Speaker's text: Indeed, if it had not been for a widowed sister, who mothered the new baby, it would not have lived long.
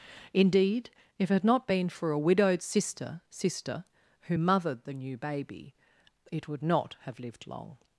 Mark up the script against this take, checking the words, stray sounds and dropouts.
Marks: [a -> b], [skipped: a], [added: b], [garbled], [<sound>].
Indeed, if it had not been for a widowed sister, [added: sister] who mothered the new baby, it would not have lived long.